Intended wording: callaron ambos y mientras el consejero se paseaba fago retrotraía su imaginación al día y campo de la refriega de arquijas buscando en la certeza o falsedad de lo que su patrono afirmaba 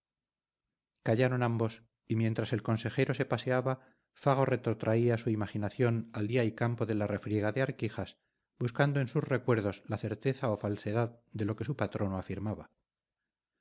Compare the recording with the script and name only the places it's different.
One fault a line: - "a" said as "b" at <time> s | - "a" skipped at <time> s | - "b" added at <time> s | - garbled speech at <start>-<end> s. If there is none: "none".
- "sus recuerdos" added at 9.1 s